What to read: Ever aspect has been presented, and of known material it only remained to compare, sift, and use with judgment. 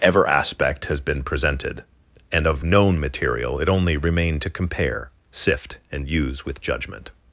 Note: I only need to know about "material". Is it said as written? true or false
true